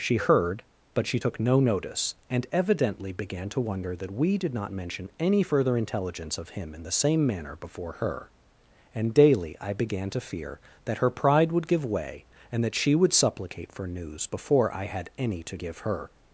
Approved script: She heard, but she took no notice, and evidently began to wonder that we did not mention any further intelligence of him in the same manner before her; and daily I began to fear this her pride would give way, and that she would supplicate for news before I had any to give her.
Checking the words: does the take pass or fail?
fail